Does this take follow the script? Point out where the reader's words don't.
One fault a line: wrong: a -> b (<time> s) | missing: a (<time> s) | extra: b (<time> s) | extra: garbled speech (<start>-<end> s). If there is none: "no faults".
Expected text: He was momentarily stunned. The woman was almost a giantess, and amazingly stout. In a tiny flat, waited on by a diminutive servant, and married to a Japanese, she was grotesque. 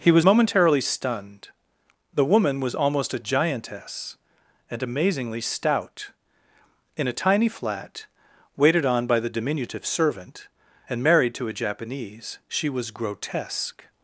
wrong: a -> the (9.2 s)